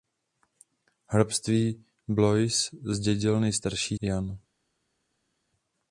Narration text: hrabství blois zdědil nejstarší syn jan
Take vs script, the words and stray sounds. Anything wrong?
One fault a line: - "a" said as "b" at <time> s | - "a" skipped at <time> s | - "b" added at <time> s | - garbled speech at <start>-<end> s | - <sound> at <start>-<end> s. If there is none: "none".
- "syn" skipped at 4.0 s